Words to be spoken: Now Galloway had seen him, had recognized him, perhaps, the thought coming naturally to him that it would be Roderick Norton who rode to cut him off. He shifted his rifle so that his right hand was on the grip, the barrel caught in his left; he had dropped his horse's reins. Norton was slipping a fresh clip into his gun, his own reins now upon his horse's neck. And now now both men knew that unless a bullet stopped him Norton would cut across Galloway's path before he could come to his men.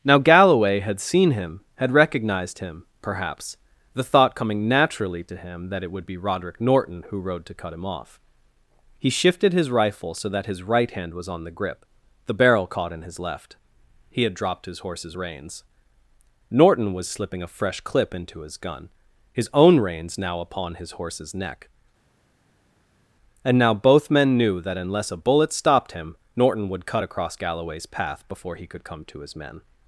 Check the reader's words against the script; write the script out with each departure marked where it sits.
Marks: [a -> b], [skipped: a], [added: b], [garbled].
Now Galloway had seen him, had recognized him, perhaps, the thought coming naturally to him that it would be Roderick Norton who rode to cut him off. He shifted his rifle so that his right hand was on the grip, the barrel caught in his left; he had dropped his horse's reins. Norton was slipping a fresh clip into his gun, his own reins now upon his horse's neck. And now [skipped: now] both men knew that unless a bullet stopped him Norton would cut across Galloway's path before he could come to his men.